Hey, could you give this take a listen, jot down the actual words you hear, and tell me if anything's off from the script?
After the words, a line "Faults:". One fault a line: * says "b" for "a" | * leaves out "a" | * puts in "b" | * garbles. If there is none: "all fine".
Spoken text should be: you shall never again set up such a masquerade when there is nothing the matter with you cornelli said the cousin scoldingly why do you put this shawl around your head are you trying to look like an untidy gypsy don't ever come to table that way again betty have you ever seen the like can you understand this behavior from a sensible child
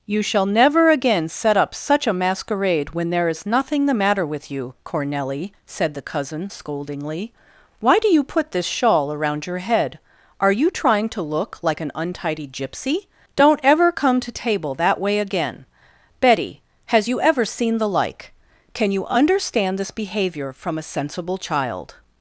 you shall never again set up such a masquerade when there is nothing the matter with you cornelli said the cousin scoldingly why do you put this shawl around your head are you trying to look like an untidy gypsy don't ever come to table that way again betty has you ever seen the like can you understand this behavior from a sensible child
Faults:
* says "has" for "have"